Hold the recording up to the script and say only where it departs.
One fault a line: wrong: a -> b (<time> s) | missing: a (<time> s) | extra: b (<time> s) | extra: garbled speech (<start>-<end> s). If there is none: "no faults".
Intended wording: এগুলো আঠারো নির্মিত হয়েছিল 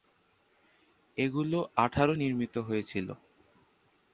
no faults